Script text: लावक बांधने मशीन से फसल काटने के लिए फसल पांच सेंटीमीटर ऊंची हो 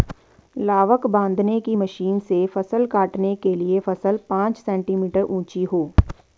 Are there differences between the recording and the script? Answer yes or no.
yes